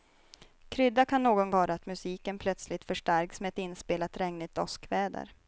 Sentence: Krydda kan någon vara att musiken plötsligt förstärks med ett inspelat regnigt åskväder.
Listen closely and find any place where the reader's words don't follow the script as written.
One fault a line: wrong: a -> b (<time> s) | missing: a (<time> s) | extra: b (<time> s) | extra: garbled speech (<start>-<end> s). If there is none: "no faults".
no faults